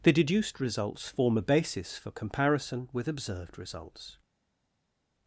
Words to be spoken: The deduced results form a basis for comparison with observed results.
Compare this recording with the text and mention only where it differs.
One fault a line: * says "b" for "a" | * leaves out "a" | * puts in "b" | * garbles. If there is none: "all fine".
all fine